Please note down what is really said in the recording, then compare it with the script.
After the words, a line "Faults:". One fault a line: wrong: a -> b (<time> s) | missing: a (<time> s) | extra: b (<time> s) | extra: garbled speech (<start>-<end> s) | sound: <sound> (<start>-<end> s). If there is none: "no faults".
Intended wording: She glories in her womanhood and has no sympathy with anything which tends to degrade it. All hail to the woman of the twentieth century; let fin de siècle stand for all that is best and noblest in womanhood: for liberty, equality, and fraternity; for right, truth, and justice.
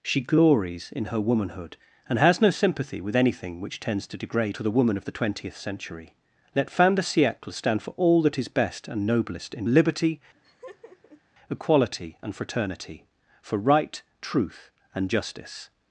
She glories in her womanhood and has no sympathy with anything which tends to degrade to the woman of the twentieth century; let fin de siècle stand for all that is best and noblest in liberty, equality, and fraternity; for right, truth, and justice.
Faults:
missing: it All hail (4.6 s)
missing: womanhood for (9.7 s)
sound: laugh (10.3-11.2 s)